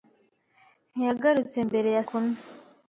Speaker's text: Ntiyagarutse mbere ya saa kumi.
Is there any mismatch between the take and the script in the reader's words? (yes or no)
yes